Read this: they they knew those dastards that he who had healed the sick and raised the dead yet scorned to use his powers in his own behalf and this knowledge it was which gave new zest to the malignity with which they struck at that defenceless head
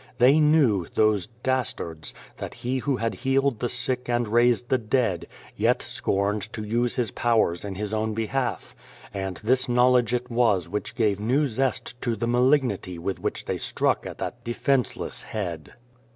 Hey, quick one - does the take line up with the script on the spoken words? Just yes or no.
no